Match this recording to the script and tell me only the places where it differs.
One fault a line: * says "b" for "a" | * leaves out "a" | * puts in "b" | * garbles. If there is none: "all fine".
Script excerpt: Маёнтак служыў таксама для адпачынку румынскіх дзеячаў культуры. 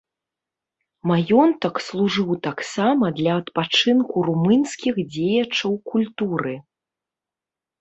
all fine